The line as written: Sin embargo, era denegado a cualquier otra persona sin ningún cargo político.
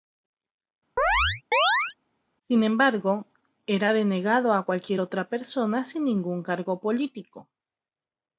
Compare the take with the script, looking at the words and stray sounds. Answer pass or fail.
fail